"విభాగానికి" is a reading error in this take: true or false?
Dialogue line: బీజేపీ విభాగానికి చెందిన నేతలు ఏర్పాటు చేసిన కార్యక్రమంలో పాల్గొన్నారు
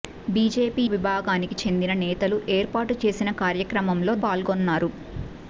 false